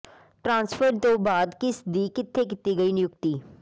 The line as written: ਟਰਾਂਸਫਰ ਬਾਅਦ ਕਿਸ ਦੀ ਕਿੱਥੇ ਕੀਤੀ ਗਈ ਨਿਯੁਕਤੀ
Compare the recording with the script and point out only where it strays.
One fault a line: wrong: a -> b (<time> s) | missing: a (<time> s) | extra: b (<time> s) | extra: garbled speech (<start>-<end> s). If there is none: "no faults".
extra: ਤੋਂ (1.0 s)